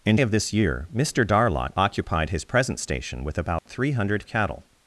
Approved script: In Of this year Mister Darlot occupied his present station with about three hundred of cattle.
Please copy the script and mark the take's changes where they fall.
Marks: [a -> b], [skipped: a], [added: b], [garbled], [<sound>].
In Of this year Mister Darlot occupied his present station with about [dropout] three hundred of cattle.